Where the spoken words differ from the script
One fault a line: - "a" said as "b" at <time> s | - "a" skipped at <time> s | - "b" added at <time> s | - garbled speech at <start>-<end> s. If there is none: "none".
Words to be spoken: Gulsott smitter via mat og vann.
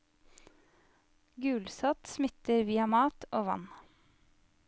none